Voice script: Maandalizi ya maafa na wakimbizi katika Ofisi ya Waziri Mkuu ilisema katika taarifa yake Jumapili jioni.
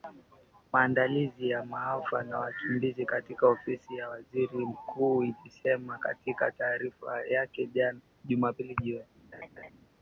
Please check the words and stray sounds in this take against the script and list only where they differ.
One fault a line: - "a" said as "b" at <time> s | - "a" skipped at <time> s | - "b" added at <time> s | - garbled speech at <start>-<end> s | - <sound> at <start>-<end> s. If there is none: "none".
- laugh at 9.3-9.7 s